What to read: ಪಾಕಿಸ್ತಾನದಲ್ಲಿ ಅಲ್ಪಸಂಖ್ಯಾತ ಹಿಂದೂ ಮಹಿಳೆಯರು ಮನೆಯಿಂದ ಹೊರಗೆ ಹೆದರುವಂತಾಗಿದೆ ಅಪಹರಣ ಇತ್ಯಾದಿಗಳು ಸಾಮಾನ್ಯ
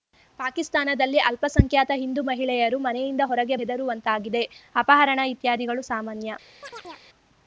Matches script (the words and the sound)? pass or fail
fail